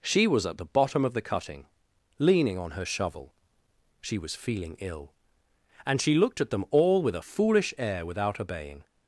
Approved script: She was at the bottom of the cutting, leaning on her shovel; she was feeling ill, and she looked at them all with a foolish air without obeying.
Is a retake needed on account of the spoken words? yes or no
no